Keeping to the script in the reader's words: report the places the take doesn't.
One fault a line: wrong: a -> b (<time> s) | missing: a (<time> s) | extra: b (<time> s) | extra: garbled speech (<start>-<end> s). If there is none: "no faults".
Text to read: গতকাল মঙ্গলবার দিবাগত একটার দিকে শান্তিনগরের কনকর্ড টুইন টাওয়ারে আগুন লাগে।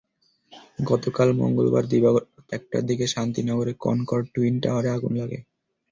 no faults